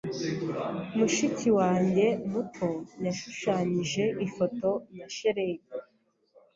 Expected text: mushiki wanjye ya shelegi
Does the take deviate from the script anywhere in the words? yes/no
yes